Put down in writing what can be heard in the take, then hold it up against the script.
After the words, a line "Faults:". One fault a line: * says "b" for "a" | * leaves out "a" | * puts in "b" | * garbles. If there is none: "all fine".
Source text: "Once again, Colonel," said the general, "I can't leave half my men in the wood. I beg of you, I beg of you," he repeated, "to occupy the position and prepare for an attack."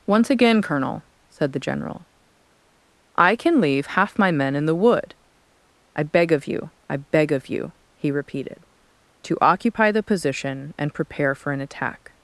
"Once again, Colonel," said the general, "I can leave half my men in the wood. I beg of you, I beg of you," he repeated, "to occupy the position and prepare for an attack."
Faults:
* says "can" for "can't"